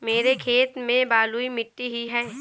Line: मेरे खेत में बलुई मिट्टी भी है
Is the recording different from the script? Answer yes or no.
yes